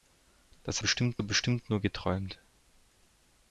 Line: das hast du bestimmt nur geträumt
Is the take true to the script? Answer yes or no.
no